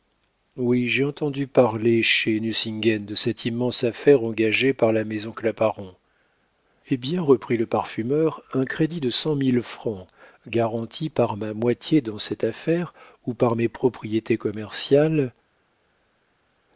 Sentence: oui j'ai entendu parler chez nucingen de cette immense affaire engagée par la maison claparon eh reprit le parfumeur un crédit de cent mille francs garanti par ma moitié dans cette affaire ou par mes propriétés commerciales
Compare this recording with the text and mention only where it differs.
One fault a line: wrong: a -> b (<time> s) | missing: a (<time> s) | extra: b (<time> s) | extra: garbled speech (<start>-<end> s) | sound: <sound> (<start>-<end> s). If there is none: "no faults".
extra: bien (7.0 s)